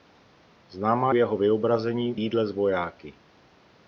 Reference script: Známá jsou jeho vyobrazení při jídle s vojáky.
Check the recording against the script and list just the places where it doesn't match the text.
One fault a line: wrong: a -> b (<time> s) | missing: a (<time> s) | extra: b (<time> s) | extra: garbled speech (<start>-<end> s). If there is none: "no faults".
missing: jsou (1.1 s)
missing: při (2.1 s)